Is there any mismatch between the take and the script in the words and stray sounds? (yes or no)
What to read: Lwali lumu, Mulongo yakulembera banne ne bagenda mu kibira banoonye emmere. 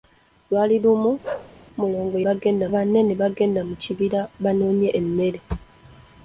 yes